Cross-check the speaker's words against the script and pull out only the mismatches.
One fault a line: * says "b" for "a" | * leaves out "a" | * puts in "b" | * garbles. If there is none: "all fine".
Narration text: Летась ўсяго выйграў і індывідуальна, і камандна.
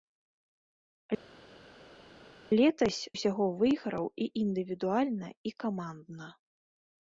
all fine